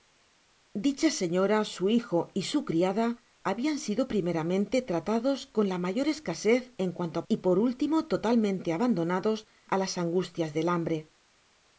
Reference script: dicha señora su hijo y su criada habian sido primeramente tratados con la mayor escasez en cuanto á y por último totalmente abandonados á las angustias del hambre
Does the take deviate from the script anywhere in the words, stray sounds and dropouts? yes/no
no